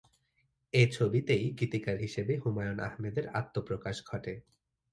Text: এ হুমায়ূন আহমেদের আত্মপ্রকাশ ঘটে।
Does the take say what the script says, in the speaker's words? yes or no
no